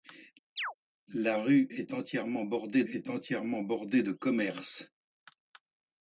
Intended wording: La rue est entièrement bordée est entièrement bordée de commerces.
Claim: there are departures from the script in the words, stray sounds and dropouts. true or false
true